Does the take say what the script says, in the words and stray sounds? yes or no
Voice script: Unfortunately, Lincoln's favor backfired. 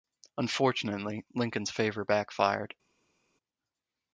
yes